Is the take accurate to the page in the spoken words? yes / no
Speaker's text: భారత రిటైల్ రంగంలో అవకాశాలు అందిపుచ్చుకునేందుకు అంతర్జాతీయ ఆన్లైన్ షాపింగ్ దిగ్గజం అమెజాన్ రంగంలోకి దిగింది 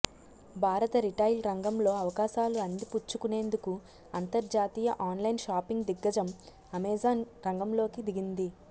yes